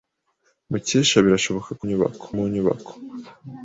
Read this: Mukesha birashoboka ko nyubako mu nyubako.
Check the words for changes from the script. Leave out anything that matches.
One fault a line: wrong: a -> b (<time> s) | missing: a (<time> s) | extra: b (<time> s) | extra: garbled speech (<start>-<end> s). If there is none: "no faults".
no faults